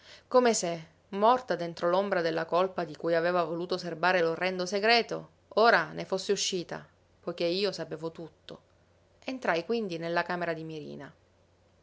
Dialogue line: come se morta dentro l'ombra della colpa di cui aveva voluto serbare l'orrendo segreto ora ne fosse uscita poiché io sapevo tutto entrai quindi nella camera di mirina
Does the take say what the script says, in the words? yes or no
yes